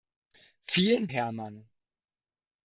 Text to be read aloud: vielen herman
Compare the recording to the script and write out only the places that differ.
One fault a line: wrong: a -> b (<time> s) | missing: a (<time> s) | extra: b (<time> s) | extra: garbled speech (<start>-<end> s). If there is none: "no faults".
no faults